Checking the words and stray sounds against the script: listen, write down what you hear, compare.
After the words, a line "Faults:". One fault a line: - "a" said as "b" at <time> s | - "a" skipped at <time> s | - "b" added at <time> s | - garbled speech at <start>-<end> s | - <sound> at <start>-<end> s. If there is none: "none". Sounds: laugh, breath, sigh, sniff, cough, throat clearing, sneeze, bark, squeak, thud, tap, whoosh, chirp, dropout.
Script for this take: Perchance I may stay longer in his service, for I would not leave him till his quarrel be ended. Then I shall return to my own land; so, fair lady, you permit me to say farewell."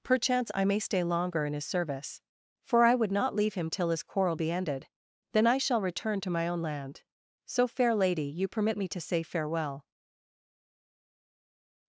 Perchance I may stay longer in his service, for I would not leave him till his quarrel be ended. Then I shall return to my own land; so, fair lady, you permit me to say farewell."
Faults:
none